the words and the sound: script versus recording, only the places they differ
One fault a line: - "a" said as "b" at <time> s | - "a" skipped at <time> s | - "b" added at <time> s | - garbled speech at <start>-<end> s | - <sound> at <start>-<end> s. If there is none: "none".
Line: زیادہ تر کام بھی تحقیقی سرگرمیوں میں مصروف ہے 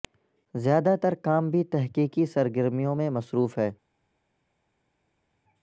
none